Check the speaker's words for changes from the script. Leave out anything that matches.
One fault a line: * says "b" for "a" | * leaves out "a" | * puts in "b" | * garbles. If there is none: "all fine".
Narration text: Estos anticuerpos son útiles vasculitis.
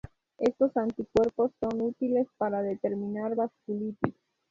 * puts in "para determinar"